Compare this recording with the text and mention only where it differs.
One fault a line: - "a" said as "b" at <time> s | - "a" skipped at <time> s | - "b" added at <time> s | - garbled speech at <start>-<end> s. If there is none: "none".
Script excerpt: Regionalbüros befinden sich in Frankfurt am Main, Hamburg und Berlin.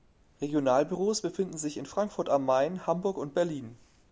none